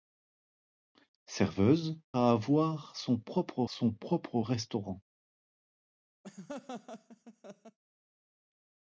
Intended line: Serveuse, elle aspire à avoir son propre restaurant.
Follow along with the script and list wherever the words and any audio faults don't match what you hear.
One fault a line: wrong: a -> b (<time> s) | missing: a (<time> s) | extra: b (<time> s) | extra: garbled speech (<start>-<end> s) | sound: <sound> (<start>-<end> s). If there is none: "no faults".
wrong: elle aspire à avoir -> à avoir son propre (2.2 s)
sound: laugh (6.2-7.8 s)